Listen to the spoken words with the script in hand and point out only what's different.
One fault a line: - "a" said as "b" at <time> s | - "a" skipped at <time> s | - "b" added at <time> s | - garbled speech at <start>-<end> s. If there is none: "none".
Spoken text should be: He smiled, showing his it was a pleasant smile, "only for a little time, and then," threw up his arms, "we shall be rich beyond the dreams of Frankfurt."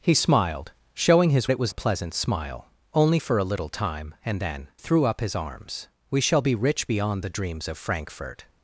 none